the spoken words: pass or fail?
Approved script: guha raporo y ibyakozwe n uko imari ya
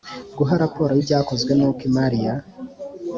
pass